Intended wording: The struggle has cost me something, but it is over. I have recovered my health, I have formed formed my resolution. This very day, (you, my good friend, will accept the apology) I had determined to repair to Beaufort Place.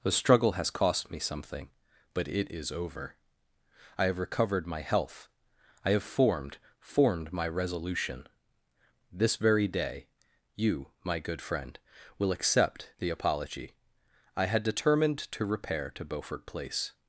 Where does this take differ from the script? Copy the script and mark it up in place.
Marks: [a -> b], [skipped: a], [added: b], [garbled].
The struggle has cost me something, but it is over. I have recovered my health, I have formed formed my resolution. This very day, (you, my good friend, will accept the apology) I had determined to repair to Beaufort Place.